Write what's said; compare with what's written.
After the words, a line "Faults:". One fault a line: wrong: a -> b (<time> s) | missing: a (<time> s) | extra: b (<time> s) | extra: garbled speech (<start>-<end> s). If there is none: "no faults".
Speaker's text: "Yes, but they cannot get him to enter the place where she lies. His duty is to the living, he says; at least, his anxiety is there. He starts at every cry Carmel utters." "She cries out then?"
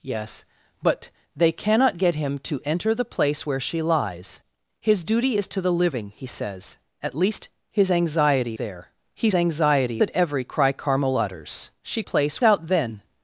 "Yes, but they cannot get him to enter the place where she lies. His duty is to the living, he says; at least, his anxiety there. He anxiety at every cry Carmel utters." "She place out then?"
Faults:
missing: is (8.6 s)
wrong: starts -> anxiety (9.3 s)
wrong: cries -> place (12.0 s)